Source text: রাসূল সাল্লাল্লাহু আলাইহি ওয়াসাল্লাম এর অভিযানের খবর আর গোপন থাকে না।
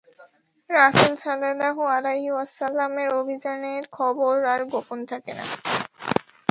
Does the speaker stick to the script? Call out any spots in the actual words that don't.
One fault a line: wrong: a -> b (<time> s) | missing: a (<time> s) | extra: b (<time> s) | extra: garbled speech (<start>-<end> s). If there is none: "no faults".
no faults